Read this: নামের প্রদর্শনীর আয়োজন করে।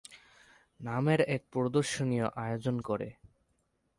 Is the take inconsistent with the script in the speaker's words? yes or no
yes